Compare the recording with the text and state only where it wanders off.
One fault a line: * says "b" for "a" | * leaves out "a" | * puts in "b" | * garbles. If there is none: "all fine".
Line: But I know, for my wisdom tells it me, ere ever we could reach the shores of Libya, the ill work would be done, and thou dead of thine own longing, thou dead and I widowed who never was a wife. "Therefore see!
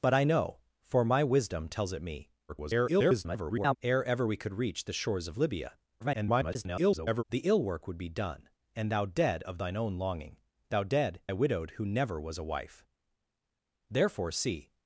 * garbles
* garbles
* leaves out "and"